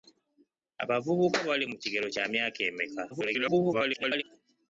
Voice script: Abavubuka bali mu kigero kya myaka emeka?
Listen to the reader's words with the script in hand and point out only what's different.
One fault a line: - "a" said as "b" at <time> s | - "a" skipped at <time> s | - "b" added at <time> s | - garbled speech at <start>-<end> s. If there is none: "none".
- garbled speech at 3.1-4.2 s